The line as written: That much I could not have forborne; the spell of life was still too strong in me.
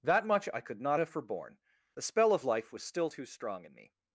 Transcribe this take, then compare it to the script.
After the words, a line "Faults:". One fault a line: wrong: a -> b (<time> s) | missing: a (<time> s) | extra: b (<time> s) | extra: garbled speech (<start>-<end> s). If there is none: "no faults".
That much I could not have forborne; the spell of life was still too strong in me.
Faults:
no faults